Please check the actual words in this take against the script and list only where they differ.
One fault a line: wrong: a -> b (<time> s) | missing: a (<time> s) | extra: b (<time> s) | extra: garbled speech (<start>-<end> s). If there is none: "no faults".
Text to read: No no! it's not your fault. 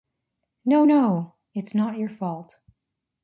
no faults